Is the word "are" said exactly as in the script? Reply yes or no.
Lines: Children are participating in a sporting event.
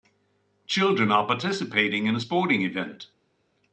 yes